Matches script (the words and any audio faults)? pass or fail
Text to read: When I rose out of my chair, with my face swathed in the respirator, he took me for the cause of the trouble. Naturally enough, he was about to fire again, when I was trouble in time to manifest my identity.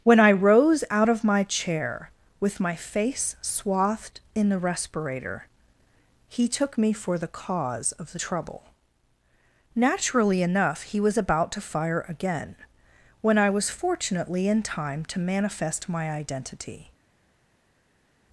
fail